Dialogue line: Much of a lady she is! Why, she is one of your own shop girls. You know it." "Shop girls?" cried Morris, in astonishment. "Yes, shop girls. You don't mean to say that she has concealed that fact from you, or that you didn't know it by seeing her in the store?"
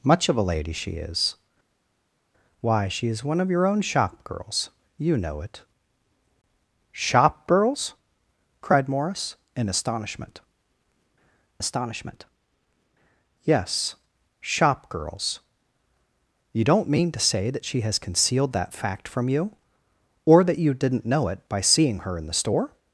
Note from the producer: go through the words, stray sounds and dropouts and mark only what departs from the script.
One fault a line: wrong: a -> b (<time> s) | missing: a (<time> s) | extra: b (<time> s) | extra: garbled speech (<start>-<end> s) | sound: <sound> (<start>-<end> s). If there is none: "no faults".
extra: astonishment (11.6 s)